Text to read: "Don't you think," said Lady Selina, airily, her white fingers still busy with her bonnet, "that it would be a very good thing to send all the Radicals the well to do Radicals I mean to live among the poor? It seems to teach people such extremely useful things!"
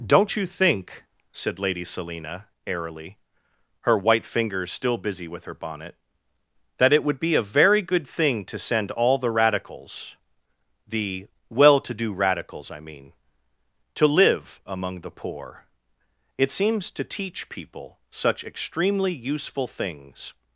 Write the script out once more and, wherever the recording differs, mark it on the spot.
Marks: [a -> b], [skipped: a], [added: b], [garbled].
"Don't you think," said Lady Selina, airily, her white fingers still busy with her bonnet, "that it would be a very good thing to send all the Radicals the well to do Radicals I mean to live among the poor? It seems to teach people such extremely useful things!"